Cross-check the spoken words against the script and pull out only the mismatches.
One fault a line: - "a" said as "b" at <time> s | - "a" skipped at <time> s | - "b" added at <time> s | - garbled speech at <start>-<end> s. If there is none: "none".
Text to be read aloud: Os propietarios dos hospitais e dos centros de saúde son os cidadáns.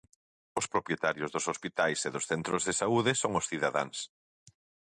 none